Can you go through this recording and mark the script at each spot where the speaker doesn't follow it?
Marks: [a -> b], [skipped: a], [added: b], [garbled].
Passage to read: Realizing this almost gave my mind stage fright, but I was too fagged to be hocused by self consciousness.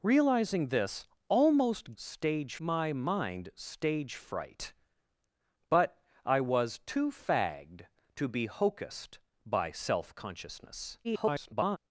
Realizing this almost [gave -> stage] my mind stage fright, but I was too fagged to be hocused by self consciousness. [garbled]